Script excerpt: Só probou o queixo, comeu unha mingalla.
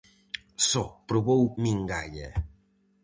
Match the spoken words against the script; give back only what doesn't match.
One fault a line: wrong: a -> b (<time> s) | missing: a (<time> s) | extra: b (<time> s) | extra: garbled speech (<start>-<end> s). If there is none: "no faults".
missing: queixo comeu unha (1.5 s)